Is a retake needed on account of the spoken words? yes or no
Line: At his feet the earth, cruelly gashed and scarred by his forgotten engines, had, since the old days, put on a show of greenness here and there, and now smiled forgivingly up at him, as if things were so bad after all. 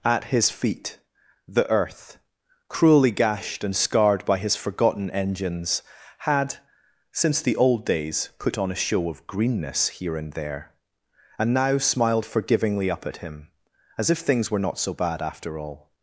yes